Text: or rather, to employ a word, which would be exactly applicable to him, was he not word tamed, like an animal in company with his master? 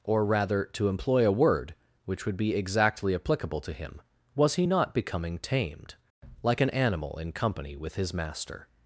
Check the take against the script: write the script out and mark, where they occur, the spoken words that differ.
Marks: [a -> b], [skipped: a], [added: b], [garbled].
or rather, to employ a word, which would be exactly applicable to him, was he not [word -> becoming] tamed, like an animal in company with his master?